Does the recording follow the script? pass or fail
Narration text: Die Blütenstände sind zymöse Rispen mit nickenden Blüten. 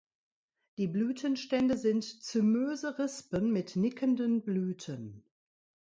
pass